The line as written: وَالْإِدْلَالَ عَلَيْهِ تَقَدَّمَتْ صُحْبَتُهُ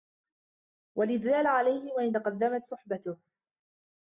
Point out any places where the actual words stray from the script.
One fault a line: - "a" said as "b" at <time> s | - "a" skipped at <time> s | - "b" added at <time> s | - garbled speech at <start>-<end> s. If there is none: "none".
- "وَإِنْ" added at 1.9 s